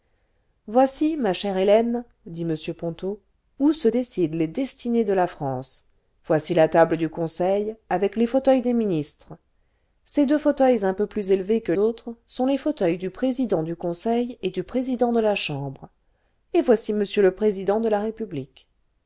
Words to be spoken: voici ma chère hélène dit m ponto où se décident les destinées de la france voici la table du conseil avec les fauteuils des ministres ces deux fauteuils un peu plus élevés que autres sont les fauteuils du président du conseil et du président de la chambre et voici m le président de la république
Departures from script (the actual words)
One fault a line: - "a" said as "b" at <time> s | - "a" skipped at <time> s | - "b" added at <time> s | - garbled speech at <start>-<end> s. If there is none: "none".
none